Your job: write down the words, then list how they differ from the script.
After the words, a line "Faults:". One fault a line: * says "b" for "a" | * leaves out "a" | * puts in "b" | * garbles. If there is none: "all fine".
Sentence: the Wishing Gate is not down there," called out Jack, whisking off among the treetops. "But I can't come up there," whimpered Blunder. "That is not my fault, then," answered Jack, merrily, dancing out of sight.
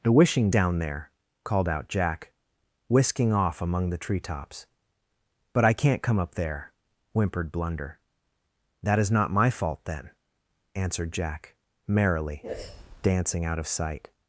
the Wishing Down there," called out Jack, whisking off among the treetops. "But I can't come up there," whimpered Blunder. "That is not my fault, then," answered Jack, merrily, dancing out of sight.
Faults:
* leaves out "Gate is not"